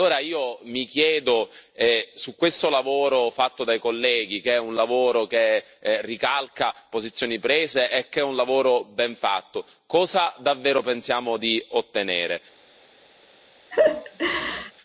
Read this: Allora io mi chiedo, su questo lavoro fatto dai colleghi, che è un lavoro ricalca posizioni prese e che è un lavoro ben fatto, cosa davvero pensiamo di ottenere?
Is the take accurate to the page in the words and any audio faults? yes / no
no